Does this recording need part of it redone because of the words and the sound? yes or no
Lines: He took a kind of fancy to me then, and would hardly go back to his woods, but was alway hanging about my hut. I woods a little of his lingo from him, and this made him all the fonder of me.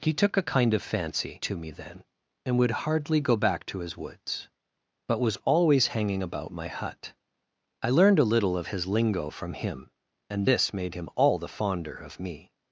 yes